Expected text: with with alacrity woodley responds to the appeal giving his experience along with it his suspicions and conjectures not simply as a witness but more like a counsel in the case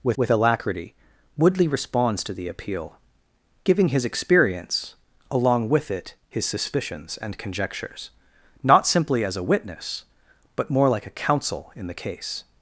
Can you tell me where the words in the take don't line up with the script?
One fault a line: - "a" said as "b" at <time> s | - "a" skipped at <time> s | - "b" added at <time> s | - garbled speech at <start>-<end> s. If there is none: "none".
none